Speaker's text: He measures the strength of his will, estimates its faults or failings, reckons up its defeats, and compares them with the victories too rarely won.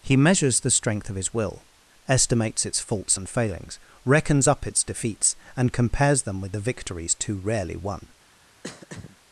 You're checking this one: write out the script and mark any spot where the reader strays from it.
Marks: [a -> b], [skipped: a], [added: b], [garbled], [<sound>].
He measures the strength of his will, estimates its faults [or -> and] failings, reckons up its defeats, and compares them with the victories too rarely won. [throat clearing]